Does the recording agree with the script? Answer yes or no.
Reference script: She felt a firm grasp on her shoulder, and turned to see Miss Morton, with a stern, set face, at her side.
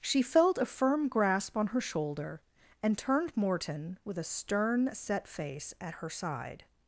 no